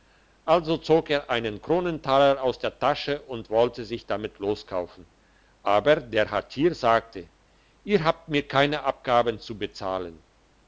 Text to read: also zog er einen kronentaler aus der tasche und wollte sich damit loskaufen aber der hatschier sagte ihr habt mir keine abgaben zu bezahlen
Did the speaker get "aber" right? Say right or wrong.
right